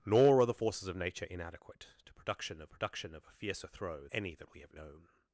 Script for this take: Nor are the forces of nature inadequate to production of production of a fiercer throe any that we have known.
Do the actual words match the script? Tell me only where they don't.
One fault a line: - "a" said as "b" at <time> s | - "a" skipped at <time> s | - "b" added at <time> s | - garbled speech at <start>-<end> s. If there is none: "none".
none